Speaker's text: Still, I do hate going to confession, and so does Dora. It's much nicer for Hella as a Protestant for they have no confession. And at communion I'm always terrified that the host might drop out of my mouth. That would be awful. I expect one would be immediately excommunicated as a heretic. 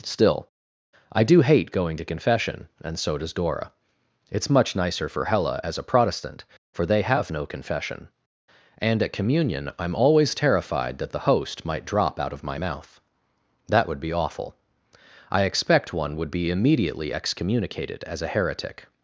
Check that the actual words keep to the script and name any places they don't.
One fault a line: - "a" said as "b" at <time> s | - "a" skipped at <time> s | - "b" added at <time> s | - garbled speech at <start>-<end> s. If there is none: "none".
none